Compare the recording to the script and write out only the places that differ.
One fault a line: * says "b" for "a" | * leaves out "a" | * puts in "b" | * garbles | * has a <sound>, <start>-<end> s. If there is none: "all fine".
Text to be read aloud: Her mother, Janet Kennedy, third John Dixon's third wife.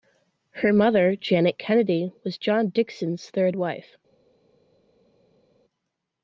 * says "was" for "third"